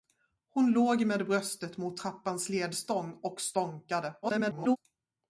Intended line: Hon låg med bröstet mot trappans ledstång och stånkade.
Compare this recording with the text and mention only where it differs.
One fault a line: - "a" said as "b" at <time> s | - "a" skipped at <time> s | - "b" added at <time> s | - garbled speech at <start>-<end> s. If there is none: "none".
- garbled speech at 4.2-4.8 s